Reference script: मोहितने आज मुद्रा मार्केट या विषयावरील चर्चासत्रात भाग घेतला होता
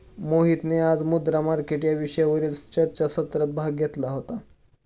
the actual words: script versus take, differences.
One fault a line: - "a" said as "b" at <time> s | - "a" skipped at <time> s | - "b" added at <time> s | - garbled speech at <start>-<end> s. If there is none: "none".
none